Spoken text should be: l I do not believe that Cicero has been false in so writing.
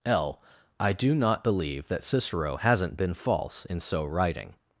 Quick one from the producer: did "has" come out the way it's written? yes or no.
no